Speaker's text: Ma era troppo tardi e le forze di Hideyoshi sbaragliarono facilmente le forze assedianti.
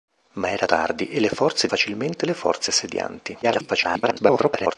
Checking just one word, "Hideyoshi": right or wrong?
wrong